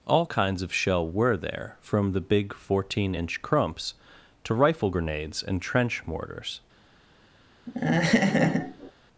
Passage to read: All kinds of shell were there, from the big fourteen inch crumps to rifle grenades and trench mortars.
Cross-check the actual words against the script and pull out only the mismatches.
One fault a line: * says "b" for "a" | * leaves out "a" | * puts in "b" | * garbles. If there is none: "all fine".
all fine